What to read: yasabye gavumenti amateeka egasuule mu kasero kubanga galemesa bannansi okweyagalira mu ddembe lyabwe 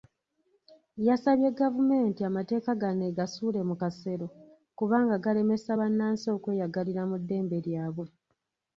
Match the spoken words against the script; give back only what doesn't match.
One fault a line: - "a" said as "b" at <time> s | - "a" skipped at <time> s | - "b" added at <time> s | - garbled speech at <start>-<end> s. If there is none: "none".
- "gano" added at 2.8 s